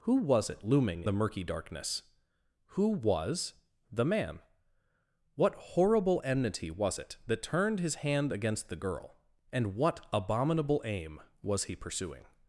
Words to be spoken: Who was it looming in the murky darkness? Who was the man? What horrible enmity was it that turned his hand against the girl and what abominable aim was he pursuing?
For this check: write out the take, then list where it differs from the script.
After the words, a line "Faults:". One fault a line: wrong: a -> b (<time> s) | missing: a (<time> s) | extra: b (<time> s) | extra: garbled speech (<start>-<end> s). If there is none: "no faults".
Who was it looming the murky darkness? Who was the man? What horrible enmity was it that turned his hand against the girl and what abominable aim was he pursuing?
Faults:
missing: in (1.0 s)